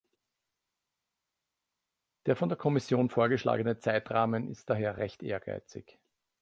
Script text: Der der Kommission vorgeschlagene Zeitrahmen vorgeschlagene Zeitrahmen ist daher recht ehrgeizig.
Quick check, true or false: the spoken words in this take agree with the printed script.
false